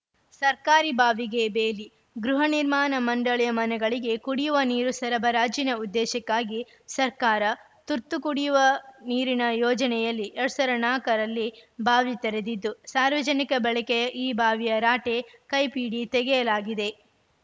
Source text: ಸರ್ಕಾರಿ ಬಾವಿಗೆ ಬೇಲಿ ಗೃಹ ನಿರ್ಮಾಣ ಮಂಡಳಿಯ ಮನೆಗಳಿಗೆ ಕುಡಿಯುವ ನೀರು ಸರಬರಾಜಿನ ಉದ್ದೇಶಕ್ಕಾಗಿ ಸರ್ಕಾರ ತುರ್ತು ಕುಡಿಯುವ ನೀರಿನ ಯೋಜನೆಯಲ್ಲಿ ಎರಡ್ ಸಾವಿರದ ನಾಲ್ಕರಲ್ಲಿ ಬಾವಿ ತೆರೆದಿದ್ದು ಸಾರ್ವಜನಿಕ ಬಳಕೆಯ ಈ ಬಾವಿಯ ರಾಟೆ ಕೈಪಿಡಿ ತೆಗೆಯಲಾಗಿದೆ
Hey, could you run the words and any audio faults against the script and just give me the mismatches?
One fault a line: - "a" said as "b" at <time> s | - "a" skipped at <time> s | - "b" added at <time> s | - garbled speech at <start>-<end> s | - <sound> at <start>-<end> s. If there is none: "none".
none